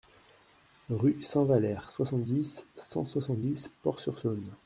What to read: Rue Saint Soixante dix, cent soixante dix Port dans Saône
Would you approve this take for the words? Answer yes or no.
no